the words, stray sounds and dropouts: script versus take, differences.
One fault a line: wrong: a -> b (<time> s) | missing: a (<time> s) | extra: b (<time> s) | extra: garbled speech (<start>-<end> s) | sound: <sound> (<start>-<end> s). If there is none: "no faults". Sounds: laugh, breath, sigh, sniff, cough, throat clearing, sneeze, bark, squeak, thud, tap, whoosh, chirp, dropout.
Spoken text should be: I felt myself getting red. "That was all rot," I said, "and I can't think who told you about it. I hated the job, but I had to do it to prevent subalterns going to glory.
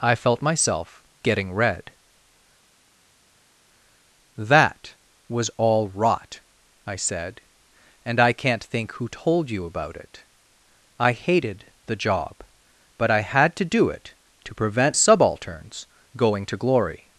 no faults